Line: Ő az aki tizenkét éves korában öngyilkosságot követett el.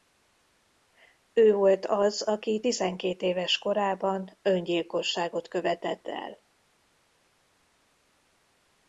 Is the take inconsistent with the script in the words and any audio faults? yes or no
yes